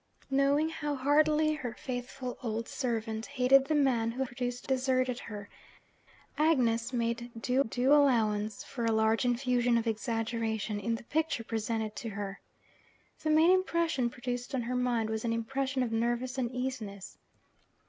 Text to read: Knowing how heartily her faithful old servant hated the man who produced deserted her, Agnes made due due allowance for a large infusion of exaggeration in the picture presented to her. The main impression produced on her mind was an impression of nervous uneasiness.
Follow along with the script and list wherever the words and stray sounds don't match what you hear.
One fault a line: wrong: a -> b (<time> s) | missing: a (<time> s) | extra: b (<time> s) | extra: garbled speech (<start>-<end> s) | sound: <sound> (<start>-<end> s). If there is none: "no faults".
no faults